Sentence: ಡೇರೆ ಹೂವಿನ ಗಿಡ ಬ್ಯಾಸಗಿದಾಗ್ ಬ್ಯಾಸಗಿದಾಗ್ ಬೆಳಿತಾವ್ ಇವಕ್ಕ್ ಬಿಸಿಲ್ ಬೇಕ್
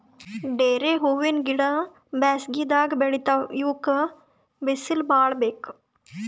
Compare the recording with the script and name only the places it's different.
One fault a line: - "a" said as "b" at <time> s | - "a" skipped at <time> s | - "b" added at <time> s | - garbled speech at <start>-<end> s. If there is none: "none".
- "ಬ್ಯಾಸಗಿದಾಗ್" skipped at 2.9 s
- "ಭಾಳ್" added at 5.1 s